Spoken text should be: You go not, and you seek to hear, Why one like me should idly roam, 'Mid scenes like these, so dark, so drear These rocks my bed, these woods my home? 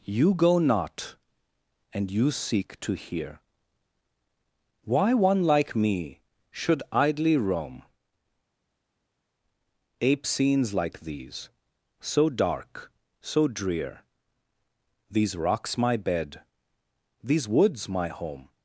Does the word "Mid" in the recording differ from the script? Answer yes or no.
yes